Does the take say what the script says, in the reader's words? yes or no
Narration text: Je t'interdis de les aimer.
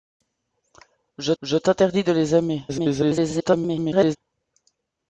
no